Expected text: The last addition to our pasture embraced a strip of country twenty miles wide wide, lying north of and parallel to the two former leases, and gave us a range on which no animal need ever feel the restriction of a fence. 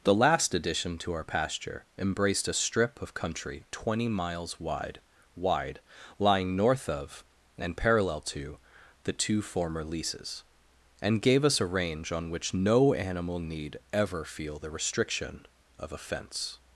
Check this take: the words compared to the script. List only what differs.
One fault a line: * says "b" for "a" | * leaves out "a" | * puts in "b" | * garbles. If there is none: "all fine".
all fine